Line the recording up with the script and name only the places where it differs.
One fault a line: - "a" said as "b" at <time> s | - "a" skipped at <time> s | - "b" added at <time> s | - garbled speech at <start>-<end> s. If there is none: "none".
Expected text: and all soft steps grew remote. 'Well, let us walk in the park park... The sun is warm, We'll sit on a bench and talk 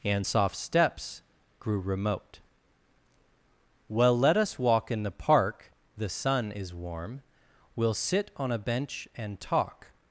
- "all" skipped at 0.3 s
- "park" skipped at 5.7 s